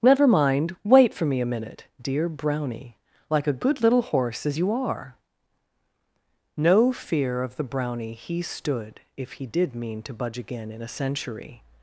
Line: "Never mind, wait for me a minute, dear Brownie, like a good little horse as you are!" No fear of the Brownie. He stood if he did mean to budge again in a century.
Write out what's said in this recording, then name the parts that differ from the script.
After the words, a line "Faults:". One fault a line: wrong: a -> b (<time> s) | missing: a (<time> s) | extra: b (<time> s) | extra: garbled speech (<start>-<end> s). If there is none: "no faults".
"Never mind, wait for me a minute, dear Brownie, like a good little horse as you are!" No fear of the Brownie. He stood if he did mean to budge again in a century.
Faults:
no faults